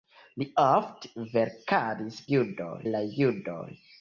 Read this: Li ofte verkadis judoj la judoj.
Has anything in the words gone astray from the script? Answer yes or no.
no